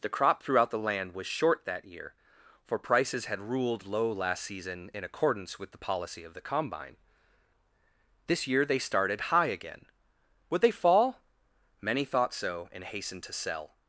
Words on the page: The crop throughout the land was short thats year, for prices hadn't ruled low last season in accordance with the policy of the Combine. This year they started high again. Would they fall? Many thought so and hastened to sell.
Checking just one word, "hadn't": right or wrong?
wrong